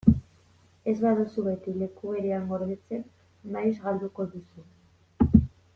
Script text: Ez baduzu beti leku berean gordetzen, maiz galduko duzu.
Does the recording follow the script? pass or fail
pass